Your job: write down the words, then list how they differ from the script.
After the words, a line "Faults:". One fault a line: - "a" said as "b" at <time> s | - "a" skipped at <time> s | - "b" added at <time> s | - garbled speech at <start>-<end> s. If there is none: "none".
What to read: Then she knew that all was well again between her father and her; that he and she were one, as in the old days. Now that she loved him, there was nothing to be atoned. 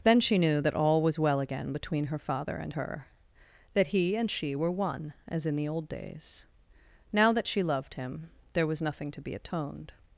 Then she knew that all was well again between her father and her; that he and she were one, as in the old days. Now that she loved him, there was nothing to be atoned.
Faults:
none